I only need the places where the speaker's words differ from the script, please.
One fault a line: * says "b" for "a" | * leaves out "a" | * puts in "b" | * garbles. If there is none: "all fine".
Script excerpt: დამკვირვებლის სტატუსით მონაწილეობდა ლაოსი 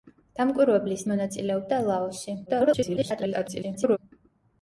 * leaves out "სტატუსით"
* garbles